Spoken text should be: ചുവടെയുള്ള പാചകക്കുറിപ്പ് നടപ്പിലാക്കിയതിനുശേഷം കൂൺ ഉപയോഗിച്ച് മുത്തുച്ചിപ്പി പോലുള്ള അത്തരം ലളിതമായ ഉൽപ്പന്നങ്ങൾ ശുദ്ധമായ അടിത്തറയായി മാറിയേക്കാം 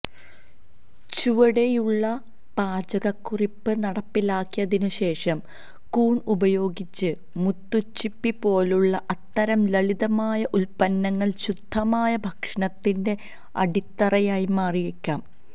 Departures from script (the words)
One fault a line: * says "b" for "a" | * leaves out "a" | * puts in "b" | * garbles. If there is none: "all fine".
* puts in "ഭക്ഷണത്തിന്റെ"